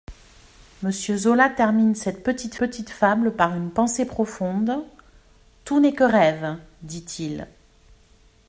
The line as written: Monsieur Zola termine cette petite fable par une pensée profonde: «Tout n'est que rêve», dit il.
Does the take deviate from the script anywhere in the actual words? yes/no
yes